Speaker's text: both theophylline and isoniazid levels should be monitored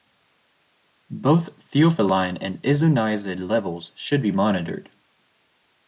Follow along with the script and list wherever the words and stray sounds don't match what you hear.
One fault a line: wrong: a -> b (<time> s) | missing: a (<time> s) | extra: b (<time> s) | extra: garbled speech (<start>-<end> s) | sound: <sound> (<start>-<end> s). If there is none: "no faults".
no faults